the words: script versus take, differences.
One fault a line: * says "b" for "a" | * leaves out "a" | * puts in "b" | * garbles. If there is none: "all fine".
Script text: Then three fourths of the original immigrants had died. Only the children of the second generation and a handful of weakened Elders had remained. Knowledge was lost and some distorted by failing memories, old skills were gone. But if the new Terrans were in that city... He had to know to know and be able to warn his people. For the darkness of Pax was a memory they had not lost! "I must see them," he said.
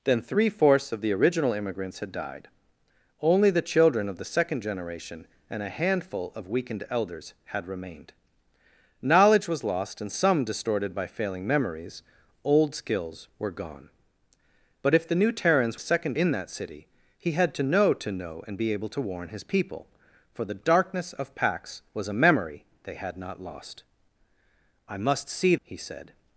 * says "second" for "were"
* leaves out "them"